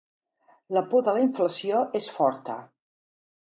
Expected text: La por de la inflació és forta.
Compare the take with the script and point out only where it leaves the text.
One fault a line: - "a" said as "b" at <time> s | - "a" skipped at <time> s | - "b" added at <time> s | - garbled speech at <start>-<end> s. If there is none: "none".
none